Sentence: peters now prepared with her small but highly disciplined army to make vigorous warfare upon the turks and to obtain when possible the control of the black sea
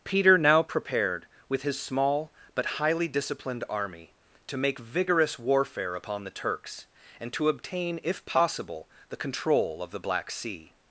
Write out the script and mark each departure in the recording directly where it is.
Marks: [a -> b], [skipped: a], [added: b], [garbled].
[peters -> peter] now prepared with [her -> his] small but highly disciplined army to make vigorous warfare upon the turks and to obtain [when -> if] possible the control of the black sea